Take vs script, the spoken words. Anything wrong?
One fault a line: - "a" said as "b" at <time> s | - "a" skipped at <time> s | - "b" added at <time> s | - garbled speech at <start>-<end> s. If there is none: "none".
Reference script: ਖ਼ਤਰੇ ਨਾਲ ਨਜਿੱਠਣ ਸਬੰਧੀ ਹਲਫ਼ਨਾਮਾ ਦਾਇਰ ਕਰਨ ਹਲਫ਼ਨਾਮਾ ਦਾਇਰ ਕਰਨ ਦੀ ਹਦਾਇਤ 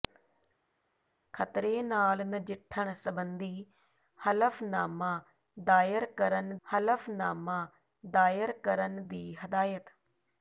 none